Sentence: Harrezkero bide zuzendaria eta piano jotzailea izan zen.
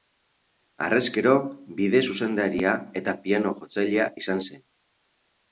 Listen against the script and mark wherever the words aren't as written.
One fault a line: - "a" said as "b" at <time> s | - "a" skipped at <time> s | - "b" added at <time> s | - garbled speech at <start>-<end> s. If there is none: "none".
none